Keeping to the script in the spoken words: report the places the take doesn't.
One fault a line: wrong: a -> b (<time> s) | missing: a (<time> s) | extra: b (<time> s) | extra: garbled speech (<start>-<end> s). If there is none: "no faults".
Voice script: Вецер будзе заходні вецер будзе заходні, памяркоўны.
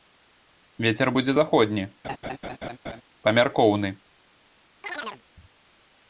missing: вецер будзе заходні (1.9 s)